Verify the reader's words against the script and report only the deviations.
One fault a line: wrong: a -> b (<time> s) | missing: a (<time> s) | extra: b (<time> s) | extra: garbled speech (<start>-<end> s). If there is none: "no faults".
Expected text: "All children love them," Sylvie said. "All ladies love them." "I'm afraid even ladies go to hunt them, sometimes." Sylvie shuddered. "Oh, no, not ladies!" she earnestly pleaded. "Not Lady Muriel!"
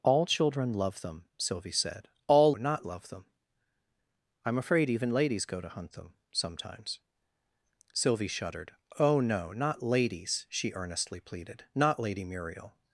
wrong: ladies -> not (2.6 s)